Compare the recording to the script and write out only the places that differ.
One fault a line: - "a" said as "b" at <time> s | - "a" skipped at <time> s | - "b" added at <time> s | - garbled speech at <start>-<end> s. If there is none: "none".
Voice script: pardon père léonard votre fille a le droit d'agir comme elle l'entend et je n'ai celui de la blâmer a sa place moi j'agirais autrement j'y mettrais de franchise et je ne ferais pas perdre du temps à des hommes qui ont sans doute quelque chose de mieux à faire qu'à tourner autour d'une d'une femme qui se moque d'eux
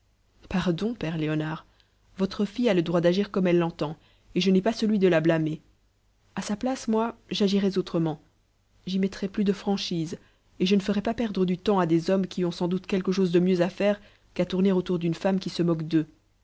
- "pas" added at 4.6 s
- "plus" added at 9.3 s
- "d'une" skipped at 15.1 s